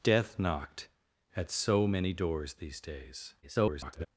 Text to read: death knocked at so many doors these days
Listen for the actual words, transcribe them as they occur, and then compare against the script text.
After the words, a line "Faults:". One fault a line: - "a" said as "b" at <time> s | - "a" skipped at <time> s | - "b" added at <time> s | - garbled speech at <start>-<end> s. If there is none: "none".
death knocked at so many doors these days [garbled]
Faults:
- garbled speech at 3.4-4.1 s